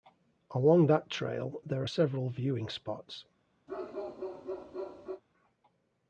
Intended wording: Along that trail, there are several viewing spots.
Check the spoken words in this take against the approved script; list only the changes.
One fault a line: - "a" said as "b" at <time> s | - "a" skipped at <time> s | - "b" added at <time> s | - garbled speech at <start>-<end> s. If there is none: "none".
none